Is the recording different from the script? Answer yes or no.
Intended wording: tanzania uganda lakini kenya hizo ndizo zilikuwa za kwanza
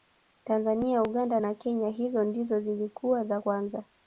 yes